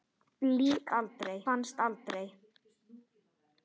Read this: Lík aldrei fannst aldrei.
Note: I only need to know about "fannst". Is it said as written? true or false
true